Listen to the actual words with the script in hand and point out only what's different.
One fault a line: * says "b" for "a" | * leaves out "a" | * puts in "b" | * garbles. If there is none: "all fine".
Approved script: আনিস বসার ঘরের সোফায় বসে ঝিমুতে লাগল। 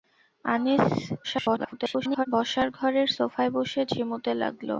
* garbles